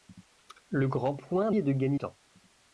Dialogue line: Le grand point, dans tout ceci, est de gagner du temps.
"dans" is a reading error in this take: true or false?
true